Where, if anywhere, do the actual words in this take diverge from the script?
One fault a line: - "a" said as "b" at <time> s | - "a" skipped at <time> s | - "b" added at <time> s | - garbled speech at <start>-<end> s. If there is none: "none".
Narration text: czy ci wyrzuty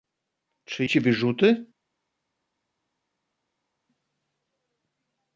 none